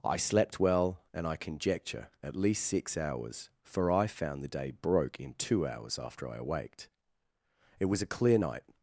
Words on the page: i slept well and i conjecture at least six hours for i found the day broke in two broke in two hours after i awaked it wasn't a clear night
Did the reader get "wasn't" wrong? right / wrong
wrong